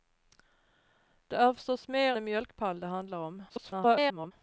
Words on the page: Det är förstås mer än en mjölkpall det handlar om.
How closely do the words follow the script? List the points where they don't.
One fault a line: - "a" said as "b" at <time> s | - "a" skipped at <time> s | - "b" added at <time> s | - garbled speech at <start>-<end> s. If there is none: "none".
- "än" skipped at 2.1 s
- garbled speech at 3.5-4.3 s